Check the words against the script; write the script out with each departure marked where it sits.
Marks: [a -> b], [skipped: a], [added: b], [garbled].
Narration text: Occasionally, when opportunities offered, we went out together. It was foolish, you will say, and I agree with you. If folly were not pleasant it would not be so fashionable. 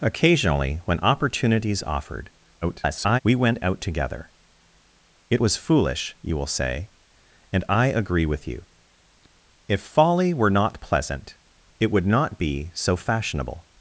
Occasionally, when opportunities offered, [garbled] we went out together. It was foolish, you will say, and I agree with you. If folly were not pleasant it would not be so fashionable.